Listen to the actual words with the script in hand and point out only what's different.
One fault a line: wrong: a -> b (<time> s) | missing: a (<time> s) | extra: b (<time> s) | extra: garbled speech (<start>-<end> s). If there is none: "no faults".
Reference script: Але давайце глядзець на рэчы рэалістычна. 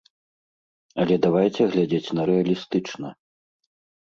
missing: рэчы (2.2 s)